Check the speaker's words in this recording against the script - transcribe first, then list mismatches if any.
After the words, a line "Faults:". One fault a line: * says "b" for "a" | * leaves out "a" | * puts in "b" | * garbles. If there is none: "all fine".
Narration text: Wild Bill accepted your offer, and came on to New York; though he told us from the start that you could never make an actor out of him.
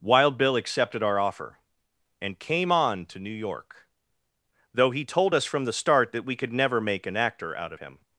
Wild Bill accepted our offer, and came on to New York; though he told us from the start that we could never make an actor out of him.
Faults:
* says "our" for "your"
* says "we" for "you"